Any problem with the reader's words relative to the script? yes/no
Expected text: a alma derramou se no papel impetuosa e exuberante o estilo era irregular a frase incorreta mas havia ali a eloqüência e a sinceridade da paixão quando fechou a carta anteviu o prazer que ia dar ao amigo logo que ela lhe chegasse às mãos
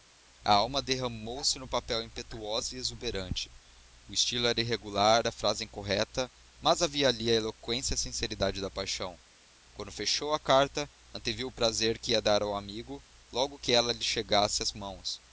no